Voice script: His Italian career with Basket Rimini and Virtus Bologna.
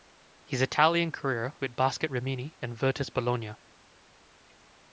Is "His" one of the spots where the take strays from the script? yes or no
no